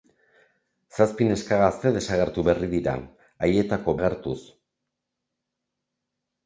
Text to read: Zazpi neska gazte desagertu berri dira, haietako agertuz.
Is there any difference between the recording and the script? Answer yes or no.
no